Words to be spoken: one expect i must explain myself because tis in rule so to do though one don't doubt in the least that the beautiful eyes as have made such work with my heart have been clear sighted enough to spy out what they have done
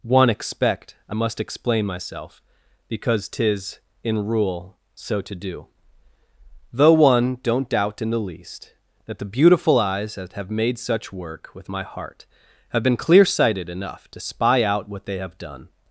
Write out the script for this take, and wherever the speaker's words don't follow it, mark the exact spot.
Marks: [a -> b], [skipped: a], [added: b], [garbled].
one expect i must explain myself because tis in rule so to do though one don't doubt in the least that the beautiful eyes [as -> that] have made such work with my heart have been clear sighted enough to spy out what they have done